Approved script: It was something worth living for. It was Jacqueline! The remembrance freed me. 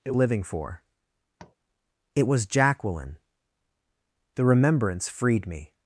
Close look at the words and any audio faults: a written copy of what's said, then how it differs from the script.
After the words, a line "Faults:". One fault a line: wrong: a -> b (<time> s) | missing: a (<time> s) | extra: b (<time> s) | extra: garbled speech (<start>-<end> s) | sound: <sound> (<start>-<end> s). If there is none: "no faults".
It living for. It was Jacqueline! The remembrance freed me.
Faults:
missing: was something worth (0.1 s)
sound: tap (1.4-1.6 s)